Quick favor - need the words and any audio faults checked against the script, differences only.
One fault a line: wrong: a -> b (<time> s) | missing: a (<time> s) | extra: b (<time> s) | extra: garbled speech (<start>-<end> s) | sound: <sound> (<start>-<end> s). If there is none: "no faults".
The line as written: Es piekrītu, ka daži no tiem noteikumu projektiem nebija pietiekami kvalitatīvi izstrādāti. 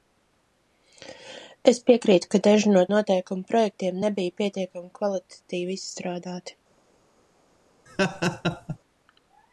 missing: tiem (2.8 s)
sound: laugh (7.9-8.8 s)